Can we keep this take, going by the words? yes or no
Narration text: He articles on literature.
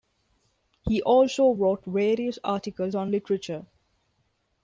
no